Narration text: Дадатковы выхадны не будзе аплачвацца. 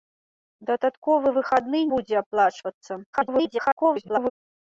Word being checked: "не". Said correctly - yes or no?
no